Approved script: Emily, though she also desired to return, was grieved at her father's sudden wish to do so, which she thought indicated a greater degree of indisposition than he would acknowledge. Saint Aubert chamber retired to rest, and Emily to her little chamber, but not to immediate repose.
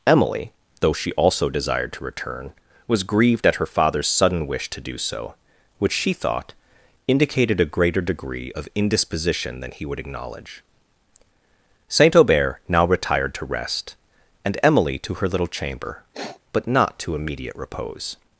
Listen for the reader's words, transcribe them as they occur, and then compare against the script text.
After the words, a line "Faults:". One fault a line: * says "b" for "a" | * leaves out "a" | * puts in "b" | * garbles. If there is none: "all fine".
Emily, though she also desired to return, was grieved at her father's sudden wish to do so, which she thought indicated a greater degree of indisposition than he would acknowledge. Saint Aubert now retired to rest, and Emily to her little chamber, but not to immediate repose.
Faults:
* says "now" for "chamber"